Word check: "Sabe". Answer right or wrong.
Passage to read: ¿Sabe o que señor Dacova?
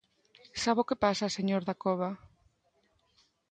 right